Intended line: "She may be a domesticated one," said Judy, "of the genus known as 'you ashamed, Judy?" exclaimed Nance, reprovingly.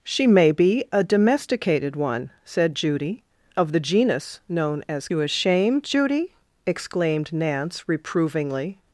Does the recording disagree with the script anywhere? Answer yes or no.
no